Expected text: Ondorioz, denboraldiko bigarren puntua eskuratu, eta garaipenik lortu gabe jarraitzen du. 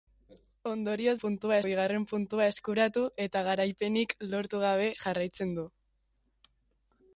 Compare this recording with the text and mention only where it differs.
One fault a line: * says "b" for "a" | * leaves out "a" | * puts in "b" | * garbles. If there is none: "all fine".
* says "puntua" for "denboraldiko"